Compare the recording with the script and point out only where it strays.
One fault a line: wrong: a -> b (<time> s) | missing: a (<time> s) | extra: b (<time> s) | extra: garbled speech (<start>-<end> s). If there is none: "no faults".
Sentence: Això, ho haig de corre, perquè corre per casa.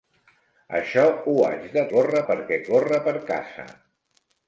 no faults